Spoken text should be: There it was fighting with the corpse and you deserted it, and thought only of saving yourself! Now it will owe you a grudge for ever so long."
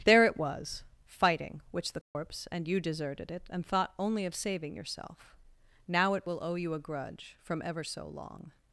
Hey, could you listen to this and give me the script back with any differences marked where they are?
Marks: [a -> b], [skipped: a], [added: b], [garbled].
There it was fighting [with -> which] the corpse and you deserted it, and thought only of saving yourself! Now it will owe you a grudge [for -> from] ever so long."